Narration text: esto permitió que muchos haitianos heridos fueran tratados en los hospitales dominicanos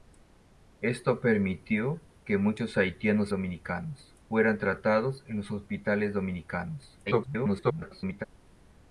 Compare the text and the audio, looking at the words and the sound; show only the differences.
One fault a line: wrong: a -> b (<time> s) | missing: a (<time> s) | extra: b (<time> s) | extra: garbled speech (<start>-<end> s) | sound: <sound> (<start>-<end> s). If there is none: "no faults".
wrong: heridos -> dominicanos (3.3 s)
extra: garbled speech (7.1-8.2 s)